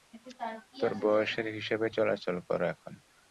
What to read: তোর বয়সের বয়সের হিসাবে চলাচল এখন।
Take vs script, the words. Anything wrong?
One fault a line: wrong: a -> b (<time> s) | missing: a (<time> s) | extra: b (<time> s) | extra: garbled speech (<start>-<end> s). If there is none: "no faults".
missing: বয়সের (1.5 s)
extra: কর (2.5 s)